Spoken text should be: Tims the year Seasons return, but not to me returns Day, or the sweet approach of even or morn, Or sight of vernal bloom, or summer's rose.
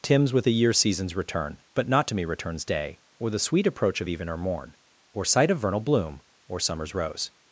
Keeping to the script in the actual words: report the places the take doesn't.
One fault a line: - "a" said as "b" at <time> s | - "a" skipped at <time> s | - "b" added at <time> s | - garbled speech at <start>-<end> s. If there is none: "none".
- "with" added at 0.3 s